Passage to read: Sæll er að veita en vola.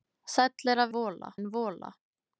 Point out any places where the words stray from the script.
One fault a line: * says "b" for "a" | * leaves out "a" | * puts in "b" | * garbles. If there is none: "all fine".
* says "vola" for "veita"